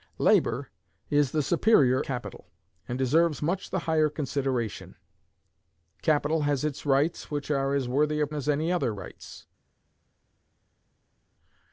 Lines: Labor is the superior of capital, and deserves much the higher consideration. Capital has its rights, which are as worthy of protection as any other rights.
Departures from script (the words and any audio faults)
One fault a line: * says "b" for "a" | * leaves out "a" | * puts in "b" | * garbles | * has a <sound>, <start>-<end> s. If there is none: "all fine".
* leaves out "of"
* leaves out "protection"